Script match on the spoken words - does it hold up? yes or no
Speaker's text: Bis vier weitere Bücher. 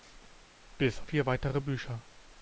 yes